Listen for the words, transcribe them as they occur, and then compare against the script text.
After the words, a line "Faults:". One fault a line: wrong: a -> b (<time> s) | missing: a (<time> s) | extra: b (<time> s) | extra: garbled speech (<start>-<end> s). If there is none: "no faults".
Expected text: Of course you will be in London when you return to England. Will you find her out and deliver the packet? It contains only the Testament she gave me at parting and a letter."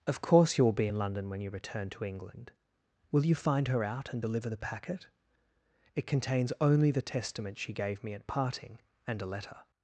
Of course you will be in London when you return to England. Will you find her out and deliver the packet? It contains only the Testament she gave me at parting and a letter."
Faults:
no faults